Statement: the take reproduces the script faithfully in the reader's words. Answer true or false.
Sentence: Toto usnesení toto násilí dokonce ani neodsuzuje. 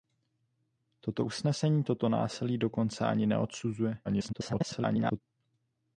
false